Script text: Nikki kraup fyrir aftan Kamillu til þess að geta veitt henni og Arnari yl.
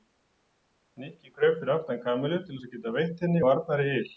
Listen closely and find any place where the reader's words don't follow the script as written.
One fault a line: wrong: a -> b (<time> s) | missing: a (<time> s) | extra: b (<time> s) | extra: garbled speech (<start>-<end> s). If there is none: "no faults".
no faults